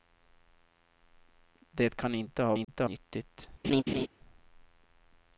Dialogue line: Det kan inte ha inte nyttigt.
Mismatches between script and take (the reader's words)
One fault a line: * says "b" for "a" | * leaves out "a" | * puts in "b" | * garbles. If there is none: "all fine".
all fine